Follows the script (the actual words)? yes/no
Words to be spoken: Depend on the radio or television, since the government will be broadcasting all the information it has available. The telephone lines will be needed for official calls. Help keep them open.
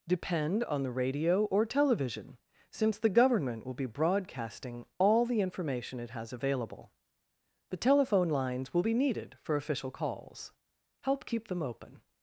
yes